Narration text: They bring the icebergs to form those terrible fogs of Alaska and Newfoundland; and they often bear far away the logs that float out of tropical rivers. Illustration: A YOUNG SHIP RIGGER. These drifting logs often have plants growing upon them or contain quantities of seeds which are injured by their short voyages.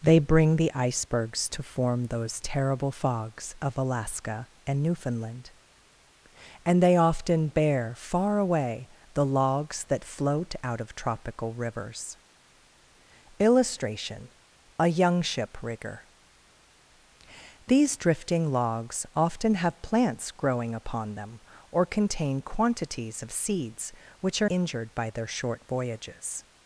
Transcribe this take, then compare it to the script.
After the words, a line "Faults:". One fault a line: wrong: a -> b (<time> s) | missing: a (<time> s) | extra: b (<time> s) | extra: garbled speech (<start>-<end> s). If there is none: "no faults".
They bring the icebergs to form those terrible fogs of Alaska and Newfoundland; and they often bear far away the logs that float out of tropical rivers. Illustration: A YOUNG SHIP RIGGER. These drifting logs often have plants growing upon them or contain quantities of seeds which are injured by their short voyages.
Faults:
no faults